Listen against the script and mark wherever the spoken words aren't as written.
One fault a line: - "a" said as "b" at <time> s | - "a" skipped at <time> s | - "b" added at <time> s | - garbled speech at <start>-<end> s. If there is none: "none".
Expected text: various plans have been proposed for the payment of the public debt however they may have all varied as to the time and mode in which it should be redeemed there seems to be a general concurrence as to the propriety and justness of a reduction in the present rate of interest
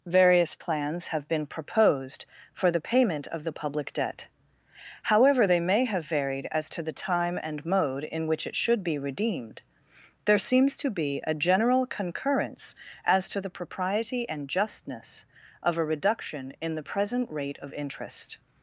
- "all" skipped at 6.1 s